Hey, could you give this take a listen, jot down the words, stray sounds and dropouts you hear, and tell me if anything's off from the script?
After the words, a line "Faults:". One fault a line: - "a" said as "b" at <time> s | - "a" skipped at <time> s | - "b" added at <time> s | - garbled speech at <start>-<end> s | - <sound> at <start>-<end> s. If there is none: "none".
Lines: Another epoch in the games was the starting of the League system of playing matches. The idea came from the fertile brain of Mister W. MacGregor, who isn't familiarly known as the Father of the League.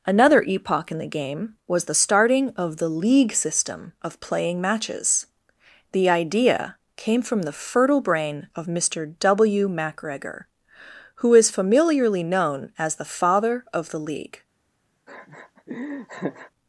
Another epoch in the game was the starting of the League system of playing matches. The idea came from the fertile brain of Mister W. MacGregor, who is familiarly known as the Father of the League.
Faults:
- "games" said as "game" at 1.1 s
- "isn't" said as "is" at 11.3 s
- laugh at 15.1-16.5 s